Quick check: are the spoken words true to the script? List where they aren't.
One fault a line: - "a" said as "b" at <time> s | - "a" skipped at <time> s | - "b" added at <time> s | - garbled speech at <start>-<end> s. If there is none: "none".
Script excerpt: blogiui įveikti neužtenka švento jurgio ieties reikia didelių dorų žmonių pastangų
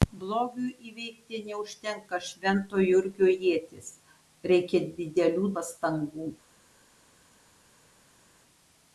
- "dorų žmonių" skipped at 5.5 s